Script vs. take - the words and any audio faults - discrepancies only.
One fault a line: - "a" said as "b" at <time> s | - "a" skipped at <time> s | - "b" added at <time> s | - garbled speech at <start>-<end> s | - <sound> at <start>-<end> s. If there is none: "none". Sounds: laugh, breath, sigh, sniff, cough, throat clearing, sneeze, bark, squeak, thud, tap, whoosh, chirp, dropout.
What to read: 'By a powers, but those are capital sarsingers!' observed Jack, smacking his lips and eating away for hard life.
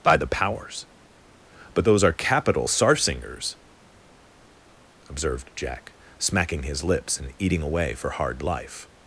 - "a" said as "the" at 0.2 s